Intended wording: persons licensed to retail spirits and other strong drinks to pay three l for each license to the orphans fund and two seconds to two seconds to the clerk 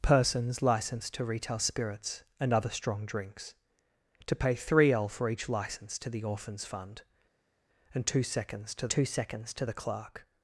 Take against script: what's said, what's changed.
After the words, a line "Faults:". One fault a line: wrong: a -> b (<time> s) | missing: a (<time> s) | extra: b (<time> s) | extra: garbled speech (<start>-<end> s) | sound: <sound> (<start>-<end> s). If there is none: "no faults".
persons licensed to retail spirits and other strong drinks to pay three l for each license to the orphans fund and two seconds to two seconds to the clerk
Faults:
no faults